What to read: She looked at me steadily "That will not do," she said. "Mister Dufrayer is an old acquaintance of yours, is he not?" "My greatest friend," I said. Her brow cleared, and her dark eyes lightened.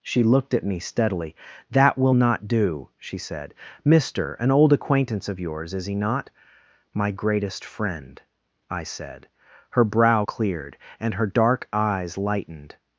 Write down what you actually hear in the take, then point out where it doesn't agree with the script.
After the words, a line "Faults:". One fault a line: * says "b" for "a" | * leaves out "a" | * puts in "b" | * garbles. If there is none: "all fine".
She looked at me steadily "That will not do," she said. "Mister an old acquaintance of yours, is he not?" "My greatest friend," I said. Her brow cleared, and her dark eyes lightened.
Faults:
* leaves out "Dufrayer is"